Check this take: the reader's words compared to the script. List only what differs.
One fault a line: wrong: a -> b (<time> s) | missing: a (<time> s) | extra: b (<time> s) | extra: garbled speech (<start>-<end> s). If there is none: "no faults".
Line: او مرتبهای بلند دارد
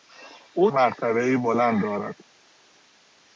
no faults